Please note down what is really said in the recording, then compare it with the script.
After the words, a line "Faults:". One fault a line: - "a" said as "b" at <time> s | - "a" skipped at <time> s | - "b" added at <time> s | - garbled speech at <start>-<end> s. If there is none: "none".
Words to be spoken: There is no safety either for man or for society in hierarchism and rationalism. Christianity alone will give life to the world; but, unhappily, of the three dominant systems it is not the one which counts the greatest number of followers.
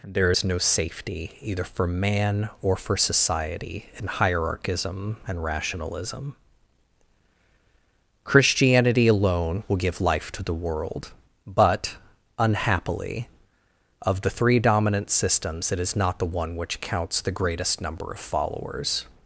There is no safety either for man or for society in hierarchism and rationalism. Christianity alone will give life to the world; but, unhappily, of the three dominant systems it is not the one which counts the greatest number of followers.
Faults:
none